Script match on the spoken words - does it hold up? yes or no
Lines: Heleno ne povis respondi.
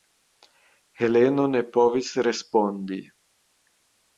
yes